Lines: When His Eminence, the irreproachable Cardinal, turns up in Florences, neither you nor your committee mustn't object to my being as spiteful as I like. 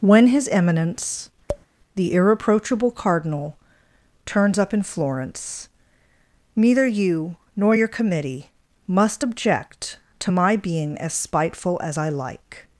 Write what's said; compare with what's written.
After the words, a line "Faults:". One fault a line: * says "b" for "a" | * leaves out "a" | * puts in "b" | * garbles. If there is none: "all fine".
When His Eminence, the irreproachable Cardinal, turns up in Florence, neither you nor your committee must object to my being as spiteful as I like.
Faults:
* says "Florence" for "Florences"
* says "must" for "mustn't"